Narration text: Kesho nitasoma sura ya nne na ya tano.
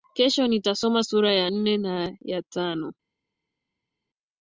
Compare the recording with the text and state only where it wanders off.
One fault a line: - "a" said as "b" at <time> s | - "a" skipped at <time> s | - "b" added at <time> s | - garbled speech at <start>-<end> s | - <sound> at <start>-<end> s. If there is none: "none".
none